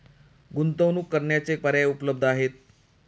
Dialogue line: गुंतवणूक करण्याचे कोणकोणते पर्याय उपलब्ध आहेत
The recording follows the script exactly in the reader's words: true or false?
false